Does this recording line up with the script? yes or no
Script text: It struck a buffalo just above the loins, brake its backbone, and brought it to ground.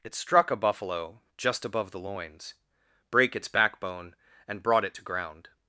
yes